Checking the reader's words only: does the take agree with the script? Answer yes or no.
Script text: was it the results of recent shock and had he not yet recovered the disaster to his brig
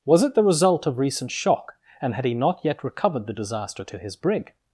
no